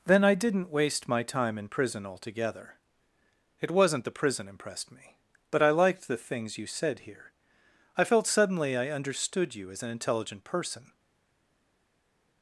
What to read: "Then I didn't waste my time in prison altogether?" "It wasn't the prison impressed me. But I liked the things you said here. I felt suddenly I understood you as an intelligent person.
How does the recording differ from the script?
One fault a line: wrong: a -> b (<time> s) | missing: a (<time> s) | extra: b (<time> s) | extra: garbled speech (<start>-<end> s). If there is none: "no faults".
no faults